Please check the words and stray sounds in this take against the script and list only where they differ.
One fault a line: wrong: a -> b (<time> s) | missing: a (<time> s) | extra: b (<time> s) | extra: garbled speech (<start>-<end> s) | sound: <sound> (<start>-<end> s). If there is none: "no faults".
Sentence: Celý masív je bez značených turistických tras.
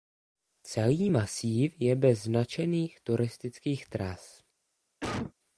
sound: cough (5.0-5.3 s)